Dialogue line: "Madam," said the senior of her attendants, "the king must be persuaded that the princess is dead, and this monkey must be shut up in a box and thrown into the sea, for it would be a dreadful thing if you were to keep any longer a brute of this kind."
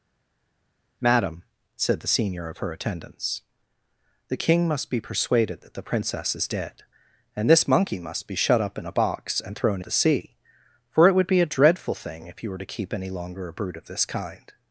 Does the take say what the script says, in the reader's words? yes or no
no